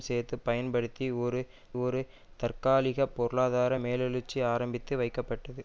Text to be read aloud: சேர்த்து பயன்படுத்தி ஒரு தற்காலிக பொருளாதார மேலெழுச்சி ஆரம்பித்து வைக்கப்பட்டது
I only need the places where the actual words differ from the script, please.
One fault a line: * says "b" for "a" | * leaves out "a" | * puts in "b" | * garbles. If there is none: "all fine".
* puts in "ஒரு"